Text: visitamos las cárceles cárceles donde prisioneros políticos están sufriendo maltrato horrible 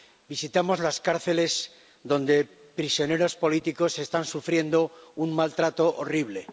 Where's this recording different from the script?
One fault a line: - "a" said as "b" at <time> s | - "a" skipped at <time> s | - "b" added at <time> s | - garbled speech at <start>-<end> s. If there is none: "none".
- "cárceles" skipped at 1.7 s
- "un" added at 5.2 s